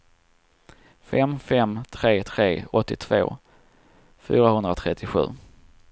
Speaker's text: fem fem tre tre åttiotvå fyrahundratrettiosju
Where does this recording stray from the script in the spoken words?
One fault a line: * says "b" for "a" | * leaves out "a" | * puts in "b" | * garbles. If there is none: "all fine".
all fine